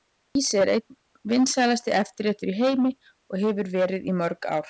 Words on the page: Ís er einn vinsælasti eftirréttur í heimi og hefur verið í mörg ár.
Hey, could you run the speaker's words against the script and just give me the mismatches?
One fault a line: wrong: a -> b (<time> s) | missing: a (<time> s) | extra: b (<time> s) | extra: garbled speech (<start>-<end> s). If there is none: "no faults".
no faults